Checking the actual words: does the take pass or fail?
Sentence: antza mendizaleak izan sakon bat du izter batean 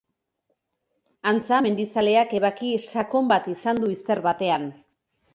fail